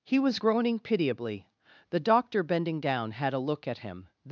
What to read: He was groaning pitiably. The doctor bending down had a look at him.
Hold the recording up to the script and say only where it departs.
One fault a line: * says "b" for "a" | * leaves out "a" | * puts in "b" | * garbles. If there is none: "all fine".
all fine